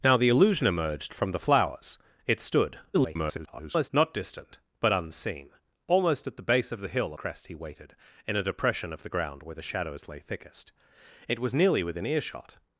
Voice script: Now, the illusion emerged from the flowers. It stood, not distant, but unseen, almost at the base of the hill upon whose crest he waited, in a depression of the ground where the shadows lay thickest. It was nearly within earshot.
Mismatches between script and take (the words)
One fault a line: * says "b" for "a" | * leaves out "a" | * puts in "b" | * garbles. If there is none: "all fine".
* garbles
* leaves out "upon whose"